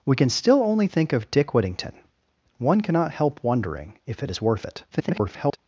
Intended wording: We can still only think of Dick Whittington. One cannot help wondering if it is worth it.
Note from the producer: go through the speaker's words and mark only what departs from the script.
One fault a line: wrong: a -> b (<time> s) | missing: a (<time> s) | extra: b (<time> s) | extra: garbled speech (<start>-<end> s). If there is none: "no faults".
extra: garbled speech (4.9-5.6 s)